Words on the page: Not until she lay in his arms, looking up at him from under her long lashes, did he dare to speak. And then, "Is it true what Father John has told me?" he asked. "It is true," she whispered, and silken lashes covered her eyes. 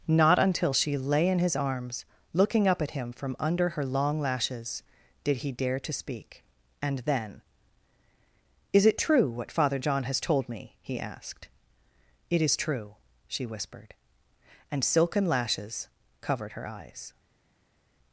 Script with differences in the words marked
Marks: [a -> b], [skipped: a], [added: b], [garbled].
Not until she lay in his arms, looking up at him from under her long lashes, did he dare to speak. And then, "Is it true what Father John has told me?" he asked. "It is true," she whispered, and silken lashes covered her eyes.